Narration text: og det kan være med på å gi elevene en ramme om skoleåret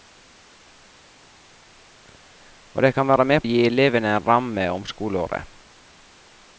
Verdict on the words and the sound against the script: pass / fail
fail